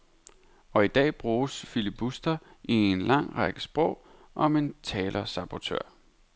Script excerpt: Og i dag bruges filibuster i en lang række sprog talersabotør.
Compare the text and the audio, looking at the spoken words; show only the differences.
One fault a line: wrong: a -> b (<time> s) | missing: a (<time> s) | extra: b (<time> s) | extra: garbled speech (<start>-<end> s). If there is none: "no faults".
extra: om en (4.3 s)